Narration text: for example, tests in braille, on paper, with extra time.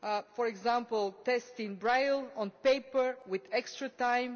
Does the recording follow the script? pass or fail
pass